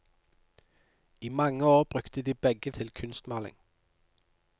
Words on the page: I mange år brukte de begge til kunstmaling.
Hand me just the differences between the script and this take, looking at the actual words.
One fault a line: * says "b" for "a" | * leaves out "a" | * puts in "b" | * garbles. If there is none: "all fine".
all fine